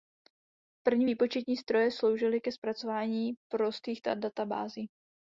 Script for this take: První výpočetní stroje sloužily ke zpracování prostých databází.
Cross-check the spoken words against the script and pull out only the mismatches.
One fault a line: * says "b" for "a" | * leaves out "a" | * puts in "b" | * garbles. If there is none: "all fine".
all fine